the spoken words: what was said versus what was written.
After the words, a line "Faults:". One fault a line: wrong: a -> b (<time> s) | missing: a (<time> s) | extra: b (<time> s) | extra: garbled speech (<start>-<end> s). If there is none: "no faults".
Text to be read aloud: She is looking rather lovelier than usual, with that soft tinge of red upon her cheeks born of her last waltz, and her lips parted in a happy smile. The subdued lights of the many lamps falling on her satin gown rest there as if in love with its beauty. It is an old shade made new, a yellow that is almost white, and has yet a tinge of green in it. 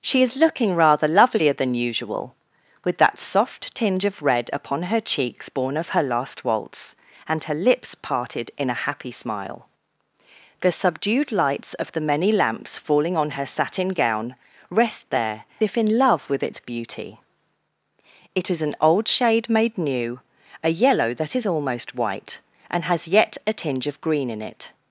She is looking rather lovelier than usual, with that soft tinge of red upon her cheeks born of her last waltz, and her lips parted in a happy smile. The subdued lights of the many lamps falling on her satin gown rest there if in love with its beauty. It is an old shade made new, a yellow that is almost white, and has yet a tinge of green in it.
Faults:
missing: as (15.4 s)